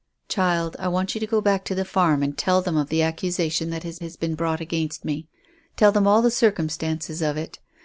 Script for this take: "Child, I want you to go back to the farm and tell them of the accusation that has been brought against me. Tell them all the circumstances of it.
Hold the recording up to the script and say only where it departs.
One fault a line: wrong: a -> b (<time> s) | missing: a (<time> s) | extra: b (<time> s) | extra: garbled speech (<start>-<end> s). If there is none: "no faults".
extra: has (4.0 s)